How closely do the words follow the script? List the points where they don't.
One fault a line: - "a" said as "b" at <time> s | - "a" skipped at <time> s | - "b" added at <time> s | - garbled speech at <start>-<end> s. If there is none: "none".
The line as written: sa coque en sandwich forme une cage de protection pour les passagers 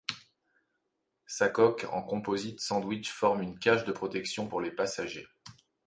- "composite" added at 2.0 s